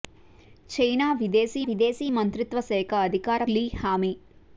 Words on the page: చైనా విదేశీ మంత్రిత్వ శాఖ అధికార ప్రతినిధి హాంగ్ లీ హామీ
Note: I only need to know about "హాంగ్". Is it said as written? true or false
false